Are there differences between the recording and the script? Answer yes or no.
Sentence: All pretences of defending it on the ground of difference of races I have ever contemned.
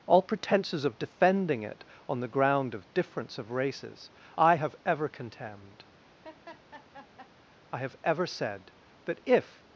yes